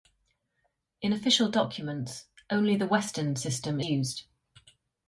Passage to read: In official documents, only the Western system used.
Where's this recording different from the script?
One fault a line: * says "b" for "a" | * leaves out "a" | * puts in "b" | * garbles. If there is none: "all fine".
all fine